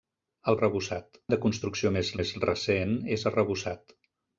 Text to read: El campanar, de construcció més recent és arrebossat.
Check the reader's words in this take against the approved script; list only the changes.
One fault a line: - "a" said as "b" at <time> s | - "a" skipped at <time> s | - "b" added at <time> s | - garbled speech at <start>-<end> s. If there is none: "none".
- "campanar" said as "arrebossat" at 0.6 s
- "més" added at 2.2 s